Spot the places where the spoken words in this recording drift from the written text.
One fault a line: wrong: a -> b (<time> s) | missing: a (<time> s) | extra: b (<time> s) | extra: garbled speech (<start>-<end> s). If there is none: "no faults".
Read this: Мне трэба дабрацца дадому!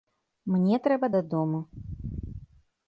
missing: дабрацца (1.1 s)